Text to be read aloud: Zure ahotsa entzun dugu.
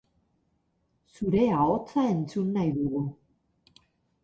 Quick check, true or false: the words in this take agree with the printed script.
false